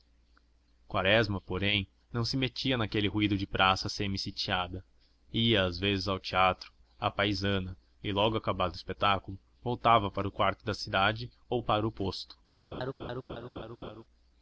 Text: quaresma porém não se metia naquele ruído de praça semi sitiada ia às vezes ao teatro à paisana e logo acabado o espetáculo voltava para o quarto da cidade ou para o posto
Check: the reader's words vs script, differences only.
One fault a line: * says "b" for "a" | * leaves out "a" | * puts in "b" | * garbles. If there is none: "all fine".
all fine